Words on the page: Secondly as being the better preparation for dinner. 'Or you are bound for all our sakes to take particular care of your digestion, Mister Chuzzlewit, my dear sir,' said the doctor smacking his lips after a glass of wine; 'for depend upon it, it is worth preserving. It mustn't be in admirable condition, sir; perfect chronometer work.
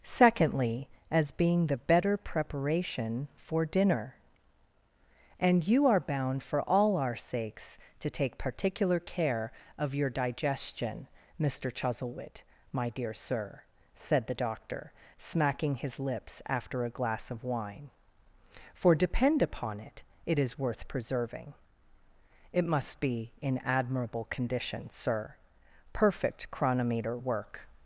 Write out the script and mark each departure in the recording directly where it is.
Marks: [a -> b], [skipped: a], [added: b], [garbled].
Secondly as being the better preparation for dinner. ['Or -> And] you are bound for all our sakes to take particular care of your digestion, Mister Chuzzlewit, my dear sir,' said the doctor smacking his lips after a glass of wine; 'for depend upon it, it is worth preserving. It [mustn't -> must] be in admirable condition, sir; perfect chronometer work.